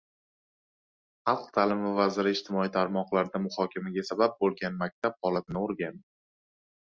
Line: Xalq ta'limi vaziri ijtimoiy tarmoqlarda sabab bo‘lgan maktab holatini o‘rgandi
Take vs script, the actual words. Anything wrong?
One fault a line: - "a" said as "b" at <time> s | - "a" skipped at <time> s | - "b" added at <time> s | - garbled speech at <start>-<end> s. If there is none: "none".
- "muhokamaga" added at 3.5 s